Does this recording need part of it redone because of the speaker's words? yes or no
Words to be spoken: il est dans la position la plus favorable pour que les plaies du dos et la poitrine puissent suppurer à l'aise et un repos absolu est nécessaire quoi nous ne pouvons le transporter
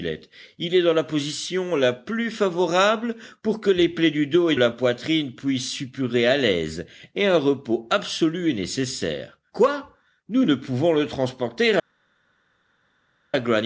no